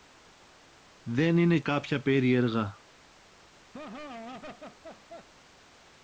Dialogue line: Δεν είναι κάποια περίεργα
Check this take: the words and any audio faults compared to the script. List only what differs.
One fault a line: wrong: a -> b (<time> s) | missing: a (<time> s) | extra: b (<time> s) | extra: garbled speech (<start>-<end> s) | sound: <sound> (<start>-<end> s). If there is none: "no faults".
sound: laugh (3.7-5.3 s)